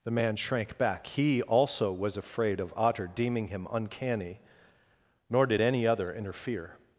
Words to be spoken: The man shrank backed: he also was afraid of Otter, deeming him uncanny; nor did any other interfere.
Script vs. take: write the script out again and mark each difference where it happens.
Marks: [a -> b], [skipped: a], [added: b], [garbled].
The man shrank [backed: -> back] he also was afraid of Otter, deeming him uncanny; nor did any other interfere.